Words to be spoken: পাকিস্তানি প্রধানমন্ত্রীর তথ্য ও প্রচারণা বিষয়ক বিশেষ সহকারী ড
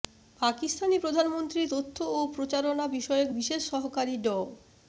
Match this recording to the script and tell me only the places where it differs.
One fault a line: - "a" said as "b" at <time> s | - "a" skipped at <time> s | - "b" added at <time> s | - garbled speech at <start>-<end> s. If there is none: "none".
none